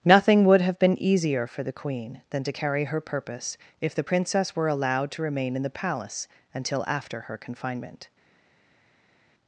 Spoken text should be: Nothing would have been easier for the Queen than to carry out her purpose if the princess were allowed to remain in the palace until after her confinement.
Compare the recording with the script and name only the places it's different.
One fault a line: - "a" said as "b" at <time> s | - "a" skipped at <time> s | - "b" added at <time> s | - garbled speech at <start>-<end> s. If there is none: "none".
- "out" skipped at 2.8 s